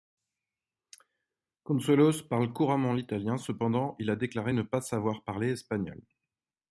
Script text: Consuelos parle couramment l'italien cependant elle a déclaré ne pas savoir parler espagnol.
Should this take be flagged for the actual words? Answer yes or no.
yes